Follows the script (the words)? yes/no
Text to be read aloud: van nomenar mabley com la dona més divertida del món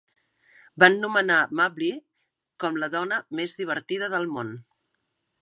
yes